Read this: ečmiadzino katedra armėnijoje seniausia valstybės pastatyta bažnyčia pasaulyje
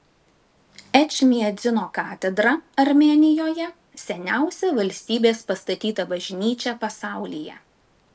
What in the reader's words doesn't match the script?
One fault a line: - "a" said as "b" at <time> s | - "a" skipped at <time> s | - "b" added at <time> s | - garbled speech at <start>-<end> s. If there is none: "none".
none